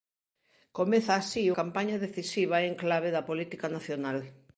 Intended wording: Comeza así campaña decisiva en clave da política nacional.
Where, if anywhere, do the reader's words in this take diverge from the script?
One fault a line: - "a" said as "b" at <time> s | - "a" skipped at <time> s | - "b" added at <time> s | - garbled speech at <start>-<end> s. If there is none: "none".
none